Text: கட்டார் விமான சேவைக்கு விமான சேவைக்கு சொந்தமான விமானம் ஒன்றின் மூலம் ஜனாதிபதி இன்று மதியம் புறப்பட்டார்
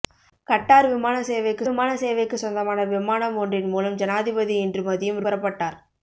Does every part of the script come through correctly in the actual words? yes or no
yes